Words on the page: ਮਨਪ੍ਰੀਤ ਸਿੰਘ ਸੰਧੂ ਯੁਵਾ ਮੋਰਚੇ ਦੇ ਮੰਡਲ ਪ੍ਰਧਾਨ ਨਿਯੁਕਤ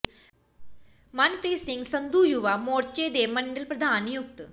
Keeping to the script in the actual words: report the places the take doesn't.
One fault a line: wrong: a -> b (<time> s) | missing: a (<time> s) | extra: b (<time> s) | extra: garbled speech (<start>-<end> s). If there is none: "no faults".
no faults